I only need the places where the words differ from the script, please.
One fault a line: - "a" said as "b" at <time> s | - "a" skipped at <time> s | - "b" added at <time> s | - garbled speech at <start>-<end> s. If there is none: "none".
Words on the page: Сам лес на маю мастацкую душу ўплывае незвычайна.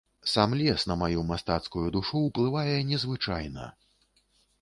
none